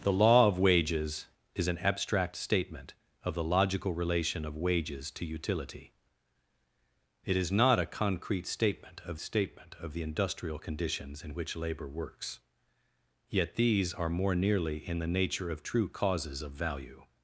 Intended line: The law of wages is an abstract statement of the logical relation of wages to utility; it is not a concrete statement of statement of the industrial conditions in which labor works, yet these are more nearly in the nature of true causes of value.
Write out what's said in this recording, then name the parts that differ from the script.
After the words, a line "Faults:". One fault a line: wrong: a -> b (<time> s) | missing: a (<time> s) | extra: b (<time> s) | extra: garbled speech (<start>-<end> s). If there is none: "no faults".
The law of wages is an abstract statement of the logical relation of wages to utility; it is not a concrete statement of statement of the industrial conditions in which labor works, yet these are more nearly in the nature of true causes of value.
Faults:
no faults